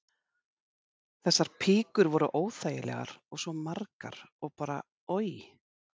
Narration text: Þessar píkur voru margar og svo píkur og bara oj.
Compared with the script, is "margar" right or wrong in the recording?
wrong